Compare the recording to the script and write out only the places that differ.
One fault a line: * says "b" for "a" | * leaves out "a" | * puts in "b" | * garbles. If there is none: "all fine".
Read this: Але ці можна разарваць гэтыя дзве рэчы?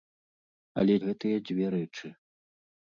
* leaves out "ці можна разарваць"